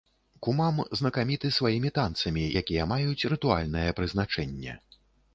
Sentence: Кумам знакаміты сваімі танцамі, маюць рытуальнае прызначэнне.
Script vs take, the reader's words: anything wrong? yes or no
yes